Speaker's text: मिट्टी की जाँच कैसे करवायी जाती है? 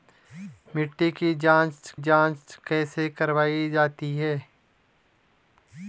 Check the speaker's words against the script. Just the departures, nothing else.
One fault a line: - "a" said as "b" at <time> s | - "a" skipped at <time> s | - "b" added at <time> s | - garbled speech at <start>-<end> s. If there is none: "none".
- "जाँच" added at 2.0 s